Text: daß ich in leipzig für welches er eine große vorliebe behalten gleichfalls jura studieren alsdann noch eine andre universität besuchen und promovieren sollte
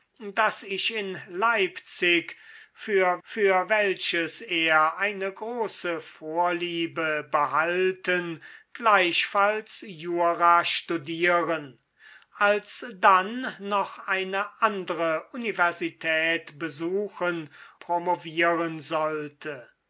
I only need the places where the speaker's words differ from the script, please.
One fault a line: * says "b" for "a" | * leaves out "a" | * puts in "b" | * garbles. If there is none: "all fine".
* puts in "für"
* leaves out "und"